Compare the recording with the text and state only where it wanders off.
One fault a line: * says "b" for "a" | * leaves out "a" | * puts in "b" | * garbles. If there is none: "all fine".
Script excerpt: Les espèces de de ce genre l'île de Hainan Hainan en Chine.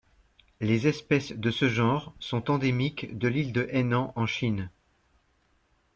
* leaves out "de"
* puts in "sont endémiques de"
* leaves out "Hainan"